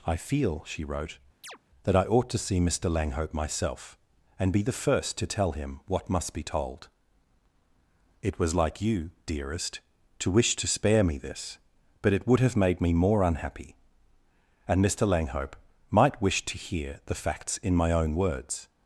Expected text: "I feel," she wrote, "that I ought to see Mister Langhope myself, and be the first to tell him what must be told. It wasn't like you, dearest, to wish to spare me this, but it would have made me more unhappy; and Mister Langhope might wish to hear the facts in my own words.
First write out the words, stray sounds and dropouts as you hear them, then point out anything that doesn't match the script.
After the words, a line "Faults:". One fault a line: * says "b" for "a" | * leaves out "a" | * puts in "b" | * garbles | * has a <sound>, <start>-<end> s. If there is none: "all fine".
"I feel," she wrote, "that I ought to see Mister Langhope myself, and be the first to tell him what must be told. It was like you, dearest, to wish to spare me this, but it would have made me more unhappy; and Mister Langhope might wish to hear the facts in my own words.
Faults:
* has a chirp, 1.4-1.6 s
* says "was" for "wasn't"